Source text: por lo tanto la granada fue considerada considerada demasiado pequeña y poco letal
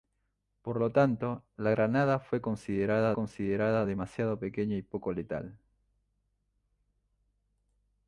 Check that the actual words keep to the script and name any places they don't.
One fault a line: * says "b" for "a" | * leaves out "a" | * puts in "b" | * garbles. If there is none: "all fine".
all fine